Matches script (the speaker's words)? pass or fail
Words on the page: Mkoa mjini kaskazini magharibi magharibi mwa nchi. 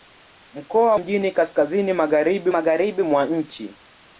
pass